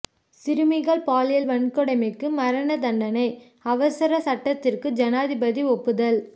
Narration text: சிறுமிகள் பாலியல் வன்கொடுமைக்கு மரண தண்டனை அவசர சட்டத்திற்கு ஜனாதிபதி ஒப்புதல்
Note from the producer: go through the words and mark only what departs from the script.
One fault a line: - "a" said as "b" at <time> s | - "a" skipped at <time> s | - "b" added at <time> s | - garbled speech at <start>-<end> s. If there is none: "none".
none